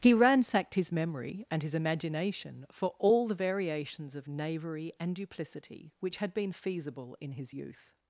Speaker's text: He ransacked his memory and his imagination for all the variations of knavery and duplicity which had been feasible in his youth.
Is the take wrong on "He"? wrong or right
right